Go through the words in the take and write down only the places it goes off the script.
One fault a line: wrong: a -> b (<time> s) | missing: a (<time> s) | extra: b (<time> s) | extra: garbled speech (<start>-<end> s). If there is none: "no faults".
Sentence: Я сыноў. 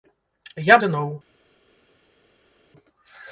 no faults